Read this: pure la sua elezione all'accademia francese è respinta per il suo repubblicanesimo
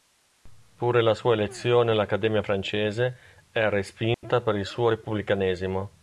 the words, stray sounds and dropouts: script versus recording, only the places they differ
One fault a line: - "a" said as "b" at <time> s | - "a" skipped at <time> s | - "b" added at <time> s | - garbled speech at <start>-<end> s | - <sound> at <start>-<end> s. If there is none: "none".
- dropout at 4.1-4.2 s